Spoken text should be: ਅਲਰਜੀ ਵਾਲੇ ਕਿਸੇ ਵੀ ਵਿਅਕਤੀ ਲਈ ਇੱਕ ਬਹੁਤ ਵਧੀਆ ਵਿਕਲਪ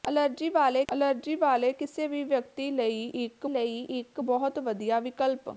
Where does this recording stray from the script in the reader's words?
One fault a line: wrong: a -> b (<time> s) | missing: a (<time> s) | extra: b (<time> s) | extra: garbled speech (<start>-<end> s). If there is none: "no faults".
extra: ਅਲਰਜੀ ਵਾਲੇ (0.9 s)
extra: ਲਈ ਇੱਕ (3.5 s)